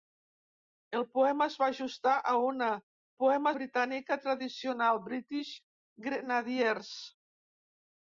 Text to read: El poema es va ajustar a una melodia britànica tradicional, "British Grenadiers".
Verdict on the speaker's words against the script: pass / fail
fail